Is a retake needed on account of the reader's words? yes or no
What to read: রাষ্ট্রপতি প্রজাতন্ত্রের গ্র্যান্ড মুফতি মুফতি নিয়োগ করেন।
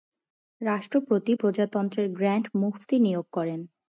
yes